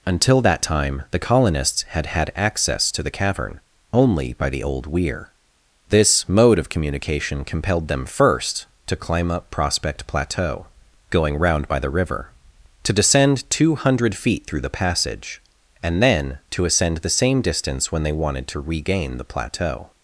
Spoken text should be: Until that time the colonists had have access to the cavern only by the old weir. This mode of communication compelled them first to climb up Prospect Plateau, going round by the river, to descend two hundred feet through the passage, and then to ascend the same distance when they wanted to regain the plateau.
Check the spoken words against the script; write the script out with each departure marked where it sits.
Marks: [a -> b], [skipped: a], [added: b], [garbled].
Until that time the colonists had [have -> had] access to the cavern only by the old weir. This mode of communication compelled them first to climb up Prospect Plateau, going round by the river, to descend two hundred feet through the passage, and then to ascend the same distance when they wanted to regain the plateau.